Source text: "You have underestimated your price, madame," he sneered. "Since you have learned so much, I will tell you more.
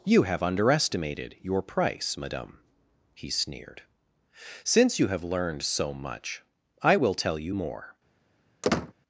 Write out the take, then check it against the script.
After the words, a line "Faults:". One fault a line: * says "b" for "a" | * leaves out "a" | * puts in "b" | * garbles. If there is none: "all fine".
"You have underestimated your price, madame," he sneered. "Since you have learned so much, I will tell you more.
Faults:
all fine